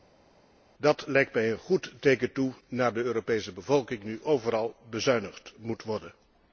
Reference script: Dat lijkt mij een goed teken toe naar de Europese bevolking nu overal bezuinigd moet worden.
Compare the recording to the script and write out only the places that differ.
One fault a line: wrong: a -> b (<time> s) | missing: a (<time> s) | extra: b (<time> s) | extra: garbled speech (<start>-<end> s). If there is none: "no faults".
no faults